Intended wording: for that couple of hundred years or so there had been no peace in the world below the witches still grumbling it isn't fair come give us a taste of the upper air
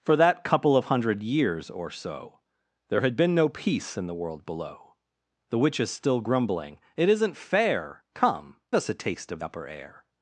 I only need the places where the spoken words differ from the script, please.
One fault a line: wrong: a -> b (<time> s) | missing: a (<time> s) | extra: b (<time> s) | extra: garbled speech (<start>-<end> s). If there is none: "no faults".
missing: give (8.6 s)
missing: the (9.4 s)